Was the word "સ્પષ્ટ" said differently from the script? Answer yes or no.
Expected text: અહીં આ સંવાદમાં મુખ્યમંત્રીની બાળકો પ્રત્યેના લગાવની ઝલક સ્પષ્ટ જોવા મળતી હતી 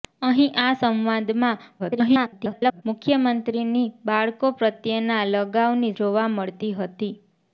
yes